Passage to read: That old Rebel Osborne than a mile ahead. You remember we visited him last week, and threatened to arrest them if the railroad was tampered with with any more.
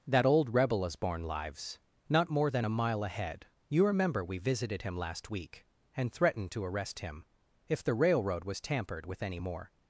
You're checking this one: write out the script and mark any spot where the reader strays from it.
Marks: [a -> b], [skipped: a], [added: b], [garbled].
That old Rebel Osborne [added: lives not more] than a mile ahead. You remember we visited him last week, and threatened to arrest [them -> him] if the railroad was tampered with [skipped: with] any more.